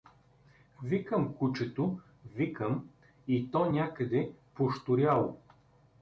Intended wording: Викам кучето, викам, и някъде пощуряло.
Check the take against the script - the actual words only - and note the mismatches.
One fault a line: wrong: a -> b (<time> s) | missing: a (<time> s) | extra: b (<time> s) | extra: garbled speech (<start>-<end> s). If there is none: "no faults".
extra: то (3.5 s)